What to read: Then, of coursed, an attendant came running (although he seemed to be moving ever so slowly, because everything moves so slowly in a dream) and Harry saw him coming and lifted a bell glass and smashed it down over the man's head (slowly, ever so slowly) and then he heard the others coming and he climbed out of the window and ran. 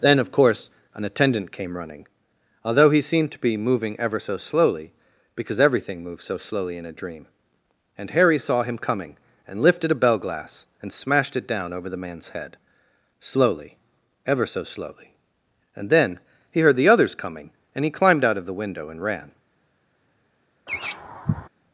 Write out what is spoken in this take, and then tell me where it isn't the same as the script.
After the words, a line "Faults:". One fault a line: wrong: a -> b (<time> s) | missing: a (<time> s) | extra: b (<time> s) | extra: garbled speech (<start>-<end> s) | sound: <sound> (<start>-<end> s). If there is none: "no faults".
Then, of course, an attendant came running (although he seemed to be moving ever so slowly, because everything moves so slowly in a dream) and Harry saw him coming and lifted a bell glass and smashed it down over the man's head (slowly, ever so slowly) and then he heard the others coming and he climbed out of the window and ran.
Faults:
wrong: coursed -> course (0.3 s)
sound: laugh (20.7-21.5 s)